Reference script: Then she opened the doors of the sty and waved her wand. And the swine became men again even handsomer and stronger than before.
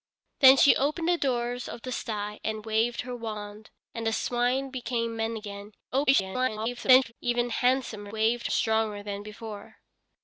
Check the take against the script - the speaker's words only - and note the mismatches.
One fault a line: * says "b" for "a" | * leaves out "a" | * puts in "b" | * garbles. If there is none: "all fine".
* garbles
* says "waved" for "and"